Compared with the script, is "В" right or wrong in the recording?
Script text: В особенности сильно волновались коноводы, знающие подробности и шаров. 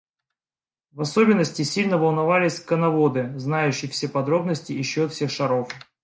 right